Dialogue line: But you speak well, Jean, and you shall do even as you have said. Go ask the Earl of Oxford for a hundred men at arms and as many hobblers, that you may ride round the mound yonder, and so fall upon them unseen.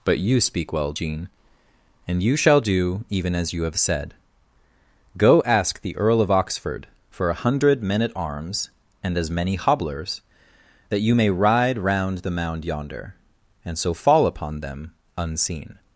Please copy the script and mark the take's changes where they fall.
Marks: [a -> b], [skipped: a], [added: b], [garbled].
But you speak well, Jean, and you shall do even as you have said. Go ask the Earl of Oxford for a hundred men at arms and as many hobblers, that you may ride round the mound yonder, and so fall upon them unseen.